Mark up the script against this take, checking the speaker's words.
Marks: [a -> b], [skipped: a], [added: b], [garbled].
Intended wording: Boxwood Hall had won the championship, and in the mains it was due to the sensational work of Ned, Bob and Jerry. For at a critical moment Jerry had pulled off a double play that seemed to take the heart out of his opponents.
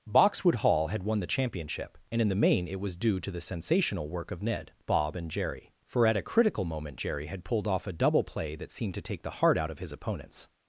Boxwood Hall had won the championship, and in the [mains -> main] it was due to the sensational work of Ned, Bob and Jerry. For at a critical moment Jerry had pulled off a double play that seemed to take the heart out of his opponents.